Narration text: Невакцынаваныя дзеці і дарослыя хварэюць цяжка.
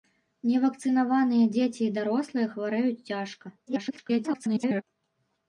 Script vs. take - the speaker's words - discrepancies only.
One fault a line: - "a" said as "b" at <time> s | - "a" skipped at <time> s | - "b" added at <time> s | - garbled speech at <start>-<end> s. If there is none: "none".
- garbled speech at 3.7-4.8 s